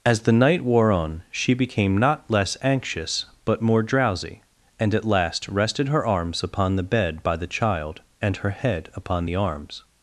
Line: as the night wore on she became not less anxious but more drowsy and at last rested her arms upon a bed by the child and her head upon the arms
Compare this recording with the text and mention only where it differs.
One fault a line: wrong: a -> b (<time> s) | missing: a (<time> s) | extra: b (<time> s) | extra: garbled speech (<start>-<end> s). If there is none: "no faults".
wrong: a -> the (6.8 s)